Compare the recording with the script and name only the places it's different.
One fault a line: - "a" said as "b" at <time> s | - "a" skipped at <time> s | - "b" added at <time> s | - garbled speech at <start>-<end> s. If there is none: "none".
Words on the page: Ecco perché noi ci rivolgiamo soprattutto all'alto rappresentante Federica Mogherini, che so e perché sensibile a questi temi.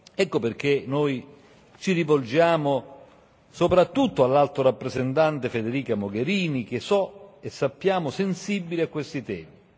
- "perché" said as "sappiamo" at 7.5 s